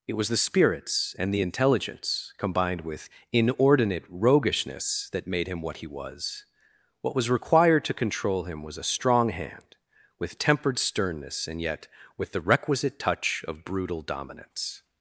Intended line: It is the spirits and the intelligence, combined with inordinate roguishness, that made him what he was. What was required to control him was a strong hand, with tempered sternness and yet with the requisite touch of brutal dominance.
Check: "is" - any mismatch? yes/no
yes